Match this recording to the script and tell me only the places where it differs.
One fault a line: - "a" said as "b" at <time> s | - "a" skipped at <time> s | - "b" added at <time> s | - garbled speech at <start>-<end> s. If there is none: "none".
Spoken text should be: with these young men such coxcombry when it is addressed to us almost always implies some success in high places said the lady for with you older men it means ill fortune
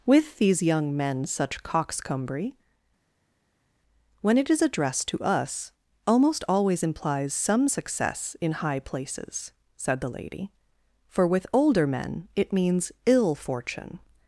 - "you" skipped at 11.5 s